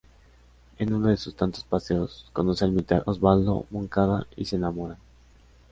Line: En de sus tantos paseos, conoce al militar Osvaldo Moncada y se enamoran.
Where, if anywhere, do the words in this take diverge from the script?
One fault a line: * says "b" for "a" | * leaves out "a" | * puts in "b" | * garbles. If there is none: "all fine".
* puts in "uno"